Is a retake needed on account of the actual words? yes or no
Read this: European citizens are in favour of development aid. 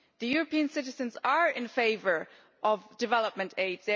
no